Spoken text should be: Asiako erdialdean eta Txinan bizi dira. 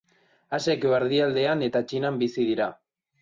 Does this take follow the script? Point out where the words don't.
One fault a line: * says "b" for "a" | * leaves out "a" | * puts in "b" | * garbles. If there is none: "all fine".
all fine